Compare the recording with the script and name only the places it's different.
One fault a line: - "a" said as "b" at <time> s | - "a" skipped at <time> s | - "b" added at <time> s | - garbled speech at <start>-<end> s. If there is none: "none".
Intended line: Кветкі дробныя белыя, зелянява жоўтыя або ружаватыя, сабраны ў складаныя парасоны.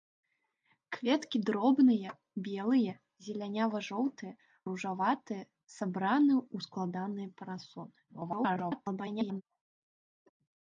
- "або" skipped at 4.3 s
- garbled speech at 8.1-9.4 s